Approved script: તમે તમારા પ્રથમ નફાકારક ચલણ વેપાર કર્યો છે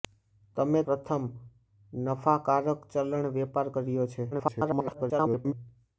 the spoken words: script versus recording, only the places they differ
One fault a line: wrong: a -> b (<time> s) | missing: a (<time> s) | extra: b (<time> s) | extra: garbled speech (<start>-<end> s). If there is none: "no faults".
missing: તમારા (0.8 s)
extra: garbled speech (4.3-5.5 s)